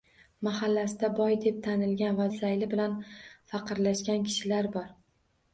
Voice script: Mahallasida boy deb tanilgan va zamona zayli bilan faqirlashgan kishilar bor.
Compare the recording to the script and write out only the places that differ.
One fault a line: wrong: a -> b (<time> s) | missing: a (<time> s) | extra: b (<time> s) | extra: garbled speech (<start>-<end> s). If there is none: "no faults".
missing: zamona (2.2 s)